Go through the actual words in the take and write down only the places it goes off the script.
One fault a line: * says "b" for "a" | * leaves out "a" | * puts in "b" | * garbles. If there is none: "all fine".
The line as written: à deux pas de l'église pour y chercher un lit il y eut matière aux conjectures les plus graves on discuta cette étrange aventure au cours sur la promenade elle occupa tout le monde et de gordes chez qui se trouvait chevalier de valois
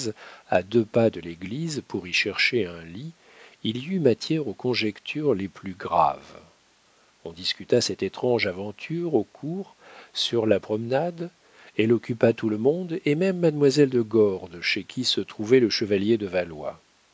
* puts in "même mademoiselle"
* puts in "le"